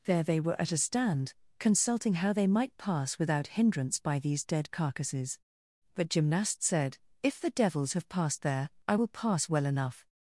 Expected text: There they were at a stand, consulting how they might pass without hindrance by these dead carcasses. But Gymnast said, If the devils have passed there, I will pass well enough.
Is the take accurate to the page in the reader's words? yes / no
yes